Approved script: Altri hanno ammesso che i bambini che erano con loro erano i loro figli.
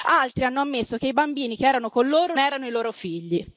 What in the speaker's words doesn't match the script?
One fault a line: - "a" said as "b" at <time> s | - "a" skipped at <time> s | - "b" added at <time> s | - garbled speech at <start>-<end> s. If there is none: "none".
none